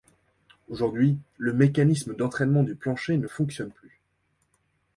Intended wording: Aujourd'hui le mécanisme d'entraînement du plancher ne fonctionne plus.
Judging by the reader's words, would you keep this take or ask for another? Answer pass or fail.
pass